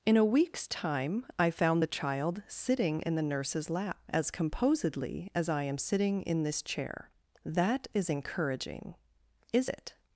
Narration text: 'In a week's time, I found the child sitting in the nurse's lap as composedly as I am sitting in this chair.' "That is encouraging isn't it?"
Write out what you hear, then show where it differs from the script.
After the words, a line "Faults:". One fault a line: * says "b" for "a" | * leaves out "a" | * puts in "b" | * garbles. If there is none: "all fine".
'In a week's time, I found the child sitting in the nurse's lap as composedly as I am sitting in this chair.' "That is encouraging is it?"
Faults:
* says "is" for "isn't"